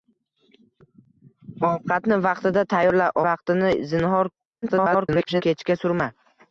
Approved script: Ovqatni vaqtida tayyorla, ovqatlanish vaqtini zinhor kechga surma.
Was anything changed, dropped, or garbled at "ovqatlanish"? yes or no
yes